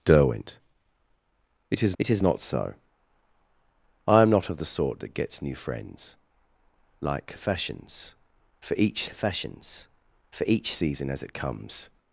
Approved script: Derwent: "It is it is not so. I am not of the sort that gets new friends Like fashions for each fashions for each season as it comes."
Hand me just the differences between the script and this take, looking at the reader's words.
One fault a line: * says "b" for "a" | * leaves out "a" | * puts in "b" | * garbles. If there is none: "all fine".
all fine